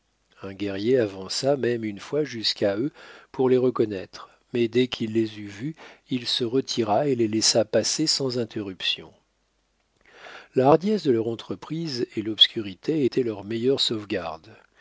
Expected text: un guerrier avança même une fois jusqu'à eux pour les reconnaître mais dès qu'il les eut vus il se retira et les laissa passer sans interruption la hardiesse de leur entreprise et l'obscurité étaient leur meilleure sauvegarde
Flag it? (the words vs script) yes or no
no